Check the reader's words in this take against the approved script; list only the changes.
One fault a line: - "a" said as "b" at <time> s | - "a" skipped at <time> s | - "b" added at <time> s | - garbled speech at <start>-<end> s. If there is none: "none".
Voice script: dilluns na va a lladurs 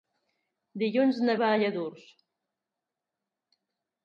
none